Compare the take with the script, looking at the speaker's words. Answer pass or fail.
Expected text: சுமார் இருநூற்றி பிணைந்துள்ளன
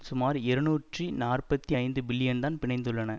fail